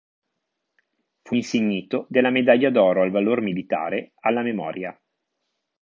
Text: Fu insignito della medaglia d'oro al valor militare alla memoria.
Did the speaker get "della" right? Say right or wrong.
right